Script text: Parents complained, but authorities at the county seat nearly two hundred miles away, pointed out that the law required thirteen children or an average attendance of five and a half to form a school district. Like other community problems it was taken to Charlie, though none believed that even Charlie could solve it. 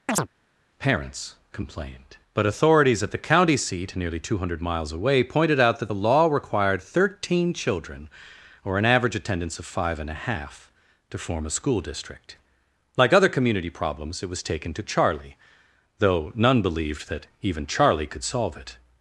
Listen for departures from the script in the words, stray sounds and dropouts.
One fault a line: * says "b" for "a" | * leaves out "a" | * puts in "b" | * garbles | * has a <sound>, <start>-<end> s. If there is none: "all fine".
* has a chirp, 0.1-0.3 s